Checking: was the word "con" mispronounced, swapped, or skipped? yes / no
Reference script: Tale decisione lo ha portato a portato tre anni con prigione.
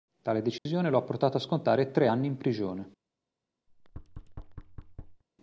yes